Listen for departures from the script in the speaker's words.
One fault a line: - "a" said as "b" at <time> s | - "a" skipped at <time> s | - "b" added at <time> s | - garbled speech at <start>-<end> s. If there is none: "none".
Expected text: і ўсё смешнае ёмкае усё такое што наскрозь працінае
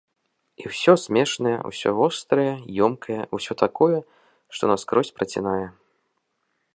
- "усё вострае" added at 1.7 s